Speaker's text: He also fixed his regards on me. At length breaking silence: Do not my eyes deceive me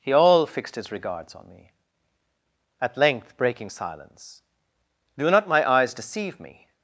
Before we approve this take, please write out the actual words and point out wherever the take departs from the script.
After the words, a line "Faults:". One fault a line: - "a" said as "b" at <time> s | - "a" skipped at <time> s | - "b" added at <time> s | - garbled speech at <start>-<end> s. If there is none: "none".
He all fixed his regards on me. At length breaking silence: Do not my eyes deceive me
Faults:
- "also" said as "all" at 0.1 s